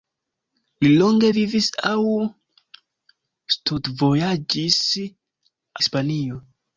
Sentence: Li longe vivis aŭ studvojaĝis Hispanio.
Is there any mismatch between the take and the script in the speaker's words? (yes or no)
no